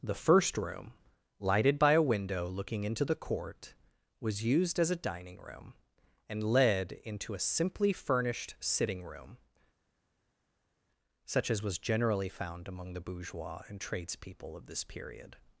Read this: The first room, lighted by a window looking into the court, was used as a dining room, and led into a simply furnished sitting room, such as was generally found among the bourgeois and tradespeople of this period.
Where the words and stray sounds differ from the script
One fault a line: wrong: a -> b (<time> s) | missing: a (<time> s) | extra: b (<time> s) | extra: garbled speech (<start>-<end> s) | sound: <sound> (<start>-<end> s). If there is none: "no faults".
no faults